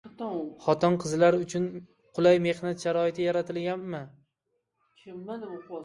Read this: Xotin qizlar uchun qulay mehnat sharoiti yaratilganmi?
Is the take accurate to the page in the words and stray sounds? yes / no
yes